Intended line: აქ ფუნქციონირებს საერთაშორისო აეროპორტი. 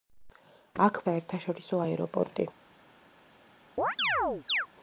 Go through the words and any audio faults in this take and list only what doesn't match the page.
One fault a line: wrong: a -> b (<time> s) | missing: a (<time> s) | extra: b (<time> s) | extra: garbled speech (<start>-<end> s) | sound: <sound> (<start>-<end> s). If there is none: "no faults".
missing: ფუნქციონირებს (1.0 s)
sound: chirp (3.8-4.7 s)